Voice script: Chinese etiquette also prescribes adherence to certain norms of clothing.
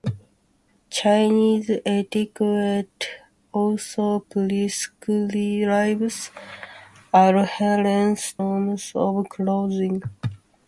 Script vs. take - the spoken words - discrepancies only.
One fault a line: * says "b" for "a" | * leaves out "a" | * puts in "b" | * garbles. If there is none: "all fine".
* leaves out "to certain"